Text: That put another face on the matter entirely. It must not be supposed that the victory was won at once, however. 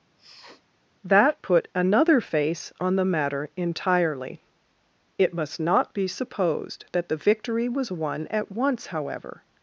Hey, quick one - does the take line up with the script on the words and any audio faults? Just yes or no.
no